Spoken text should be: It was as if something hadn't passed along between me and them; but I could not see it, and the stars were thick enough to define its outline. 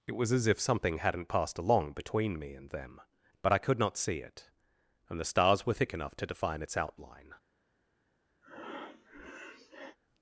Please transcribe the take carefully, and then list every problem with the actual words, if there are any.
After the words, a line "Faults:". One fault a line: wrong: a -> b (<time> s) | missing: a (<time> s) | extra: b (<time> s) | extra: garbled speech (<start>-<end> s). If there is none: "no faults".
It was as if something hadn't passed along between me and them; but I could not see it, and the stars were thick enough to define its outline.
Faults:
no faults